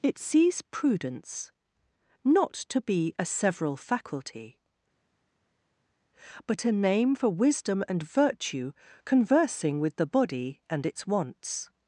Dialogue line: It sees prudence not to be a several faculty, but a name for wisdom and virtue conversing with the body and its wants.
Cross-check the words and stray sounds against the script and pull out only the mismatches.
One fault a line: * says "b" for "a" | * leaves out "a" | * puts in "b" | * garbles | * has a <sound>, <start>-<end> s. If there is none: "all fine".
all fine